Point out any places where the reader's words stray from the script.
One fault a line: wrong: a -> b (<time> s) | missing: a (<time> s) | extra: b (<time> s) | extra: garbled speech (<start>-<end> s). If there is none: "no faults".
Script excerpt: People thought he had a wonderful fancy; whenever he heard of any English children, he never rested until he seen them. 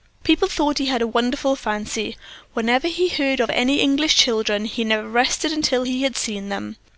extra: had (6.0 s)